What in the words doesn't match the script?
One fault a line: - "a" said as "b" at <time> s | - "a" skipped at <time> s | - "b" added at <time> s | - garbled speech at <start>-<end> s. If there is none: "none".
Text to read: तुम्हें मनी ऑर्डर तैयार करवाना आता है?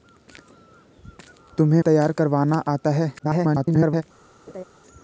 - "मनी ऑर्डर" skipped at 1.8 s
- garbled speech at 3.2-4.0 s